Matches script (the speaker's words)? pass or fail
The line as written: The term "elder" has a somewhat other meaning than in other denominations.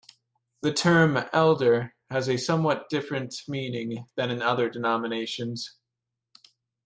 fail